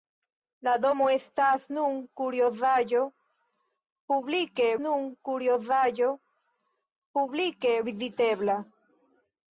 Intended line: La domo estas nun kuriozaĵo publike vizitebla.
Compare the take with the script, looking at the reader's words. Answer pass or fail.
fail